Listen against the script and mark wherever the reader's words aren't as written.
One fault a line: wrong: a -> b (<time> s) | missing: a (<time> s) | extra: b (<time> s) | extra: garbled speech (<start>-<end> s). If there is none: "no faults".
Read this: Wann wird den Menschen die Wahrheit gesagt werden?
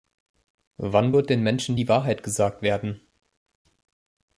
no faults